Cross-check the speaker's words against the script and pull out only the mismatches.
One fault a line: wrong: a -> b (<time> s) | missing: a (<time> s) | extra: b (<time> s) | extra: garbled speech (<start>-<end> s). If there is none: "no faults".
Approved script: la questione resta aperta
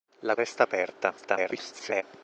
missing: questione (0.3 s)
extra: garbled speech (1.2-2.0 s)